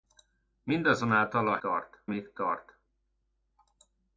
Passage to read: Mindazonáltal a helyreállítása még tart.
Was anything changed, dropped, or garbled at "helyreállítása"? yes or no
yes